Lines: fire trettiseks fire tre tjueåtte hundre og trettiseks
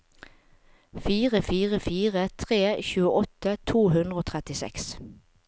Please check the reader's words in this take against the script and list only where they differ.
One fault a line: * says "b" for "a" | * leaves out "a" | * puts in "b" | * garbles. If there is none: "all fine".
* says "fire" for "trettiseks"
* puts in "to"